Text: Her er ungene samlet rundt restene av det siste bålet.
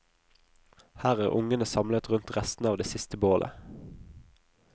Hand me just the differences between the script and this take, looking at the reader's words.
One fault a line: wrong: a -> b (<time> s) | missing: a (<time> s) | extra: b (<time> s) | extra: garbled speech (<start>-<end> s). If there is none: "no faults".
no faults